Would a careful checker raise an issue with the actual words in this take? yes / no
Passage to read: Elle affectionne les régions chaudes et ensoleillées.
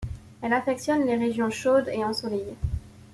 no